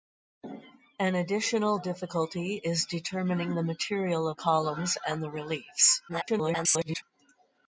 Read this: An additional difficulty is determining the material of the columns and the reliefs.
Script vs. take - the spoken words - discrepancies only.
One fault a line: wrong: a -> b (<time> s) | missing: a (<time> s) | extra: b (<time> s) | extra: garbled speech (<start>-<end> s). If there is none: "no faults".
missing: the (4.4 s)
extra: garbled speech (6.1-7.0 s)